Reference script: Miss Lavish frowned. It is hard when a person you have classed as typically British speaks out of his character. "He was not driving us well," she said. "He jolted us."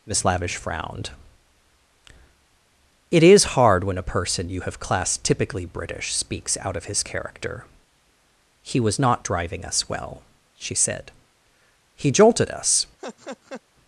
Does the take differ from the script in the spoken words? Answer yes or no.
yes